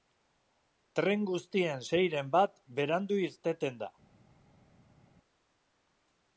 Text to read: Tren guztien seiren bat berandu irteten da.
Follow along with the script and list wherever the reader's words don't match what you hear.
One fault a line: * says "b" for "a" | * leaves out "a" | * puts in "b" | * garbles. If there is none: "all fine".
all fine